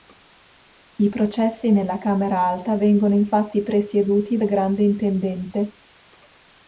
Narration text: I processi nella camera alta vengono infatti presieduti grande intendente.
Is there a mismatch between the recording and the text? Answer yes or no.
no